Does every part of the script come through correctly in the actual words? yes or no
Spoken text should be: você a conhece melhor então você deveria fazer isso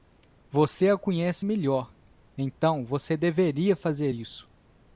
yes